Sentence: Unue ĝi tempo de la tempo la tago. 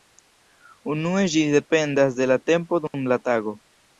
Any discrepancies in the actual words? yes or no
yes